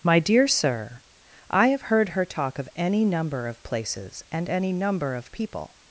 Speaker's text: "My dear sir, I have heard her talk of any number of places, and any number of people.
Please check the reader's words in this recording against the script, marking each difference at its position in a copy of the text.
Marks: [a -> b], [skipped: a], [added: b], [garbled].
"My dear sir, I have heard her talk of any number of places, and any number of people.